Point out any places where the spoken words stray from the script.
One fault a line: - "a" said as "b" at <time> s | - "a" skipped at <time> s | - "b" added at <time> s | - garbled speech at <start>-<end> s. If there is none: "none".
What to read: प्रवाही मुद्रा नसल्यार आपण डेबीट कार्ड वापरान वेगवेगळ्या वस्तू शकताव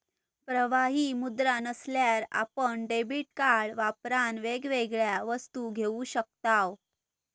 - "घेऊ" added at 5.7 s